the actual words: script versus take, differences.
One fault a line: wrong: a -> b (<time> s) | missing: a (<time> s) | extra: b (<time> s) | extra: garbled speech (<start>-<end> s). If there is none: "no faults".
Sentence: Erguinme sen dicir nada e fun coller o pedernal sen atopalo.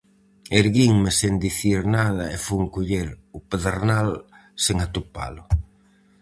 no faults